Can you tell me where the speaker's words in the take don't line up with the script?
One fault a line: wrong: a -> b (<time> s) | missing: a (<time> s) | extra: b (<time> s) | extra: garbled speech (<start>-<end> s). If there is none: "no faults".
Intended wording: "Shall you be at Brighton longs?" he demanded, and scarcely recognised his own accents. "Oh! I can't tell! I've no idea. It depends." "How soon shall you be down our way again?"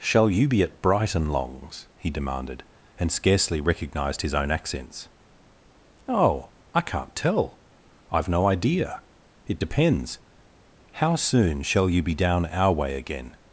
no faults